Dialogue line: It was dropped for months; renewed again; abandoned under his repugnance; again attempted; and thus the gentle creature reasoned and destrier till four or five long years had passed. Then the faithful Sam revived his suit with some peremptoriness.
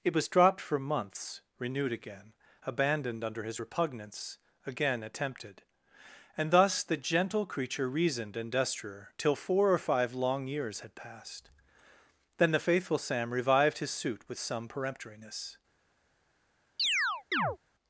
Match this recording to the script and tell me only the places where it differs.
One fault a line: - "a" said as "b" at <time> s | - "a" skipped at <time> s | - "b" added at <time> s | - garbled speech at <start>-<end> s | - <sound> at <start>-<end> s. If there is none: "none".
- chirp at 16.8-17.6 s